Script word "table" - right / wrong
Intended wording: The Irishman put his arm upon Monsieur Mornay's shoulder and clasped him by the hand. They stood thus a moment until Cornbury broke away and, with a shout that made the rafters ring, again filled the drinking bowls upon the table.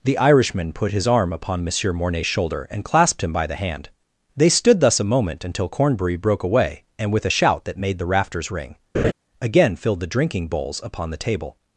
right